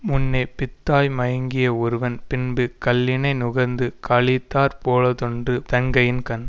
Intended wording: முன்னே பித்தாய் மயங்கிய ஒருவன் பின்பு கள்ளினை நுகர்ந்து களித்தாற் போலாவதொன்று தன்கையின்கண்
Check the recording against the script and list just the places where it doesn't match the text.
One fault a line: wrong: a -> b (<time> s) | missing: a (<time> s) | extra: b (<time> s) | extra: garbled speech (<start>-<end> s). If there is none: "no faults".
no faults